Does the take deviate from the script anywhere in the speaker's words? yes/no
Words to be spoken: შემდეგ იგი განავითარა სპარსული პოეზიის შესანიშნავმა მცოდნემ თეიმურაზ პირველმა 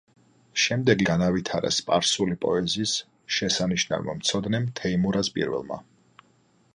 yes